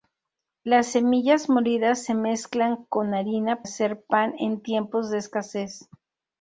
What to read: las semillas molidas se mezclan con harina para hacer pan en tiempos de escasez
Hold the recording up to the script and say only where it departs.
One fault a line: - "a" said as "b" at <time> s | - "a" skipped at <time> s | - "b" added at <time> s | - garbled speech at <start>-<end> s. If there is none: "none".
- "para" skipped at 3.6 s